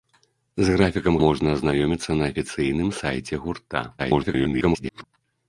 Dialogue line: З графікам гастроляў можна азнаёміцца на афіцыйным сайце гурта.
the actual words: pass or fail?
fail